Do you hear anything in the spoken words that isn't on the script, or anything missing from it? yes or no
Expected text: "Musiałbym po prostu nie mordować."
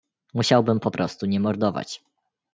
no